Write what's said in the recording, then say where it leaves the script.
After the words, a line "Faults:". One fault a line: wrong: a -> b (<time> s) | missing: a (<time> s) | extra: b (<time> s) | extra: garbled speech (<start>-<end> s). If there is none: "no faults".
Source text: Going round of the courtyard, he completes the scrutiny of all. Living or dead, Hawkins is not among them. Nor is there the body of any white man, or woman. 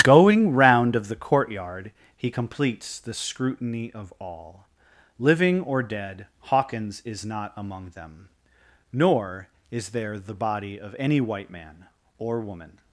Going round of the courtyard, he completes the scrutiny of all. Living or dead, Hawkins is not among them. Nor is there the body of any white man, or woman.
Faults:
no faults